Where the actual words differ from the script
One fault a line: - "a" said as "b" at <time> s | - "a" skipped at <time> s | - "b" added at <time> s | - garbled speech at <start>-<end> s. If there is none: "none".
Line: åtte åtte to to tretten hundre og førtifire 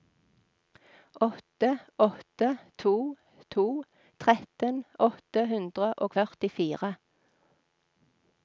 - "åtte" added at 5.1 s